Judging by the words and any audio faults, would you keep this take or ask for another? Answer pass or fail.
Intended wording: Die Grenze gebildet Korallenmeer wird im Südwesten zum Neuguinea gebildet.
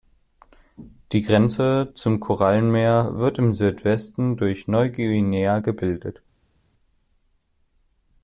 fail